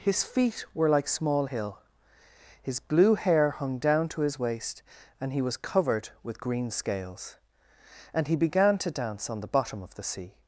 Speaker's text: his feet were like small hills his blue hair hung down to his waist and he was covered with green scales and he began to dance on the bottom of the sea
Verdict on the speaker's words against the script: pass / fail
fail